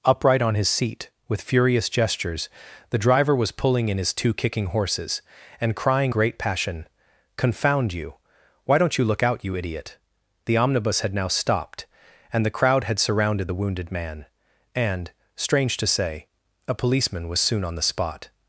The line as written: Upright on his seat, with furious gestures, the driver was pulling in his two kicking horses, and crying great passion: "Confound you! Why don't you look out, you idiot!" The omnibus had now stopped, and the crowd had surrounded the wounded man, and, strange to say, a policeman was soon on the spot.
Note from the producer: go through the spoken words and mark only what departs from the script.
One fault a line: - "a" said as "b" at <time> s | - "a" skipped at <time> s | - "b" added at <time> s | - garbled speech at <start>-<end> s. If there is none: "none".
none